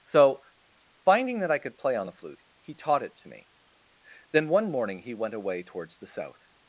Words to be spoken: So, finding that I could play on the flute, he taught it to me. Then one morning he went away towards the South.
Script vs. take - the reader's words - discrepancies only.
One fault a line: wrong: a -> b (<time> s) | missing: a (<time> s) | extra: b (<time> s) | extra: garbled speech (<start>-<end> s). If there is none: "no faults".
no faults